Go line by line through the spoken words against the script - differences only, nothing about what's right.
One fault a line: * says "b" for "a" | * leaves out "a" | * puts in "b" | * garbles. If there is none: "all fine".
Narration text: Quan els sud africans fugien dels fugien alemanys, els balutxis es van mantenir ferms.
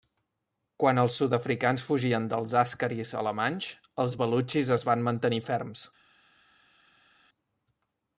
* says "àscaris" for "fugien"